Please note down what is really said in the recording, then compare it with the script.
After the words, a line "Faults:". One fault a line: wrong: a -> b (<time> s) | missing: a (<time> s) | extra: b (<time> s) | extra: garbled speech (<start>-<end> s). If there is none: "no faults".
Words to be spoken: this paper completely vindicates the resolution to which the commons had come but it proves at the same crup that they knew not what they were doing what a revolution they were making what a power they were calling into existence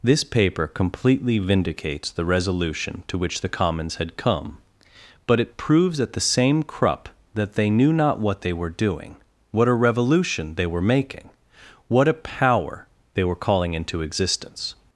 this paper completely vindicates the resolution to which the commons had come but it proves at the same crup that they knew not what they were doing what a revolution they were making what a power they were calling into existence
Faults:
no faults